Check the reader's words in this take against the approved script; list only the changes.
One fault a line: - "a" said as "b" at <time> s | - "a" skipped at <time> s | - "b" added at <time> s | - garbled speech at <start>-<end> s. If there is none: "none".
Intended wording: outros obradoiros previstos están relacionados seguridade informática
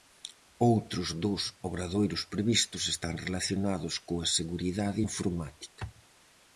- "dos" added at 1.2 s
- "coa" added at 4.1 s